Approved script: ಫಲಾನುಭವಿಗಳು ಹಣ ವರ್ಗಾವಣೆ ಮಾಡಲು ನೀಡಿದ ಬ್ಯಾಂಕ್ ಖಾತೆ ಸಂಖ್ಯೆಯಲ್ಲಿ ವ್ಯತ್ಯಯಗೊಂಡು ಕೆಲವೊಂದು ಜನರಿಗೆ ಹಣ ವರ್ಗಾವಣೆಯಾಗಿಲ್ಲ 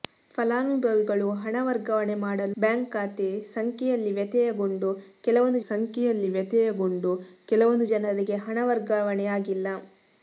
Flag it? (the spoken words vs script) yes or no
yes